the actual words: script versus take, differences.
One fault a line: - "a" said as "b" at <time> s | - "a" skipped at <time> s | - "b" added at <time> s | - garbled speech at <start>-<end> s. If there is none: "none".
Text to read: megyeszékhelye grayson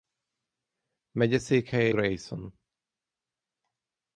none